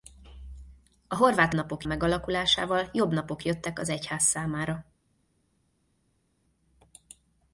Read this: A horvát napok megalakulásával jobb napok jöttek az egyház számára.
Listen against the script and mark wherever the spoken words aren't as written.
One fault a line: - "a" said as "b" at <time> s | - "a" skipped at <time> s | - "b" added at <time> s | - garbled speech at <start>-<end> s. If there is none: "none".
none